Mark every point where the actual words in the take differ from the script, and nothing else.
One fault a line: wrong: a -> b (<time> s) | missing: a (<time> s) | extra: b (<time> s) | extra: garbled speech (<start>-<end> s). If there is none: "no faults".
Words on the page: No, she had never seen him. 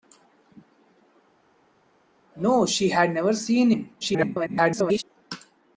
extra: garbled speech (4.0-5.0 s)